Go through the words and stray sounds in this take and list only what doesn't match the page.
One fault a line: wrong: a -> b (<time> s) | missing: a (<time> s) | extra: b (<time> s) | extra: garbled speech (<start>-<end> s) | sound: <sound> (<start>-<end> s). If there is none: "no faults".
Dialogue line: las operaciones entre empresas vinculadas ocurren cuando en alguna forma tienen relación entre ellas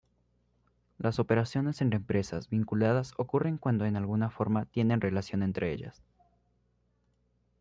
no faults